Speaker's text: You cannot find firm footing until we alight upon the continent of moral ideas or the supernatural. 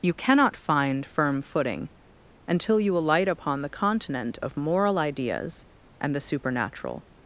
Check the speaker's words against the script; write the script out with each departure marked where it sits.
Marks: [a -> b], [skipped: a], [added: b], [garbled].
You cannot find firm footing until [we -> you] alight upon the continent of moral ideas [or -> and] the supernatural.